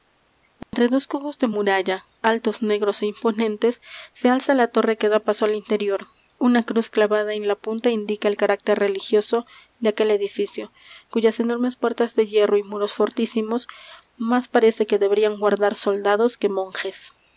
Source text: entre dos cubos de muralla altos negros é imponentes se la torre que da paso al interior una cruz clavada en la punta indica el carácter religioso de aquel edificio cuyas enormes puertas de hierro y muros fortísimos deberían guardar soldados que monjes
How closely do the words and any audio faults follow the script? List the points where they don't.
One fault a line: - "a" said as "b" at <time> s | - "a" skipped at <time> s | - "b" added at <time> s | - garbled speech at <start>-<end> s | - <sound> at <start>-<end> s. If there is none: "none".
- dropout at 0.6-0.7 s
- "alza" added at 4.4 s
- "más parece que" added at 14.2 s